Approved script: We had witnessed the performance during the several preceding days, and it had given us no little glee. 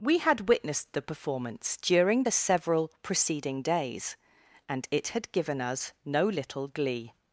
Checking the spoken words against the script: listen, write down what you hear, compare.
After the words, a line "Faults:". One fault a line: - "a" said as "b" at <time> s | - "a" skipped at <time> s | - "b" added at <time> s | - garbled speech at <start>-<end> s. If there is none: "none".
We had witnessed the performance during the several preceding days, and it had given us no little glee.
Faults:
none